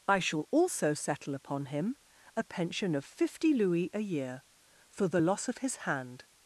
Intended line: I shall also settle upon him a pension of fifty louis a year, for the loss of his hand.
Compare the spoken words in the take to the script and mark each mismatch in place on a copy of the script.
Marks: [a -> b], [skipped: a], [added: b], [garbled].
I shall also settle upon him a pension of fifty louis a year, for the loss of his hand.